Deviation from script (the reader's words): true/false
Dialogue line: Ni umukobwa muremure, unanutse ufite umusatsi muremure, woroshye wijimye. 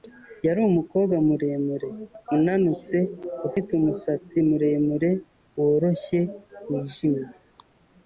true